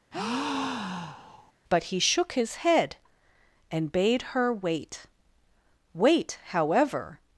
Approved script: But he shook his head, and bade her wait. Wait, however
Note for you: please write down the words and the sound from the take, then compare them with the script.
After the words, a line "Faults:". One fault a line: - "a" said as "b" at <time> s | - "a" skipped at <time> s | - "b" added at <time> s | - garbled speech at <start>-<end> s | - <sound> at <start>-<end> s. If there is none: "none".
But he shook his head, and bade her wait. Wait, however
Faults:
- breath at 0.1-1.5 s